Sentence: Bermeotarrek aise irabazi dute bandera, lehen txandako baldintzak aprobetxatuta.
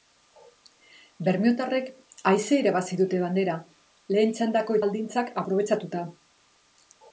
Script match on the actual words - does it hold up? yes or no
yes